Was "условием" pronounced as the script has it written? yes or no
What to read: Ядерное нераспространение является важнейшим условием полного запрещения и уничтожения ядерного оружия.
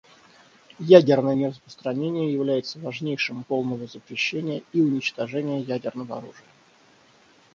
no